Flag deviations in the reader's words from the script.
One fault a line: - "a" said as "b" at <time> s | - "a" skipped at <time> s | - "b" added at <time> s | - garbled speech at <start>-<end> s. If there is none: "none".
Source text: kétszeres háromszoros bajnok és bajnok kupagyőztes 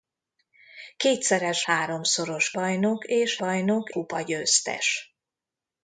none